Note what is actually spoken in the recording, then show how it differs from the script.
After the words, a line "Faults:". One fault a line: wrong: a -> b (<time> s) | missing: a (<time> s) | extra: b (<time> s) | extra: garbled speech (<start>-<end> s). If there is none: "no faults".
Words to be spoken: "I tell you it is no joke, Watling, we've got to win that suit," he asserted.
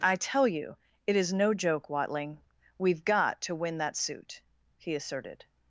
"I tell you it is no joke, Watling, we've got to win that suit," he asserted.
Faults:
no faults